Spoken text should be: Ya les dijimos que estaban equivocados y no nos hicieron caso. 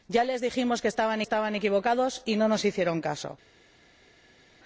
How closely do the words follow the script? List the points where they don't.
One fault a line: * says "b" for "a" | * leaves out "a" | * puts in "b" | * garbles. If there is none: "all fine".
* puts in "estaban"